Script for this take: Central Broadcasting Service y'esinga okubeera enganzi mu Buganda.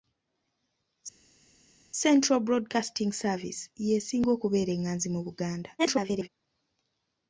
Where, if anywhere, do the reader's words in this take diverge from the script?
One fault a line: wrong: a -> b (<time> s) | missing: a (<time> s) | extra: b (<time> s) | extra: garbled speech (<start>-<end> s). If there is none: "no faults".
extra: garbled speech (5.8-6.3 s)